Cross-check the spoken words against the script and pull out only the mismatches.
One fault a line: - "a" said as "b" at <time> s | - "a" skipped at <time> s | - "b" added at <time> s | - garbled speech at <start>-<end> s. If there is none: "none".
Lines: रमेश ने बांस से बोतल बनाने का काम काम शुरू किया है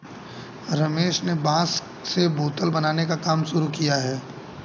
- "काम" skipped at 3.4 s